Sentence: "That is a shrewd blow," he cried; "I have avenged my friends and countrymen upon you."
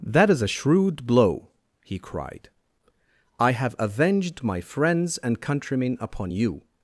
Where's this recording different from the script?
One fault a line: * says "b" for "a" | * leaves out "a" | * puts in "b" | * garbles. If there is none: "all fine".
all fine